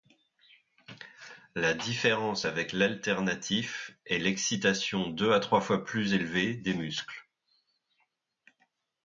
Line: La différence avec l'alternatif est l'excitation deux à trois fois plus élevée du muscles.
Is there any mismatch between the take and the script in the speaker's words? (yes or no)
yes